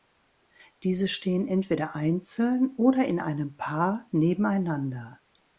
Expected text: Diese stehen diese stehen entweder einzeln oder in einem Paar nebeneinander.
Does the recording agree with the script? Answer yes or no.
no